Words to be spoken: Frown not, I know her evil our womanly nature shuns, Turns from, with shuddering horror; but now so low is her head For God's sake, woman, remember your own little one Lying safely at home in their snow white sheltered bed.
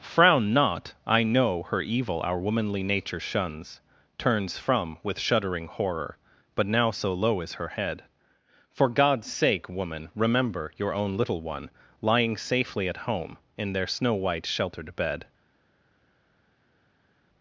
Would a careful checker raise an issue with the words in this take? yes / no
no